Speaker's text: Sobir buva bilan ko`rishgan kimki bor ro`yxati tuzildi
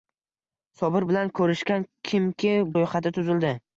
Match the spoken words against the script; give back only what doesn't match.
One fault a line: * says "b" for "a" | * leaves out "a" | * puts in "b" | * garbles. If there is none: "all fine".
* leaves out "buva"
* leaves out "bor"